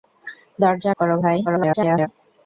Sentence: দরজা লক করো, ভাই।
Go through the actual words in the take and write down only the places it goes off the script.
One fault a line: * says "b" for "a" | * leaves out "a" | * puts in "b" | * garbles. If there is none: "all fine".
* leaves out "লক"
* garbles